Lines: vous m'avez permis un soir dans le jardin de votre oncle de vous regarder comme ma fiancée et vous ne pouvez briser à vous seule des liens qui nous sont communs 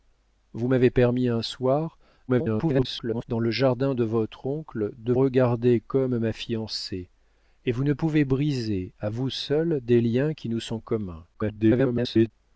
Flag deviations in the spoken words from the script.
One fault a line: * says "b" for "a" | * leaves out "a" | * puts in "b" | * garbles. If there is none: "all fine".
* garbles
* leaves out "vous"
* garbles